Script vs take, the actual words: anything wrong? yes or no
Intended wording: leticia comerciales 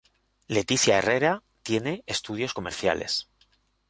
yes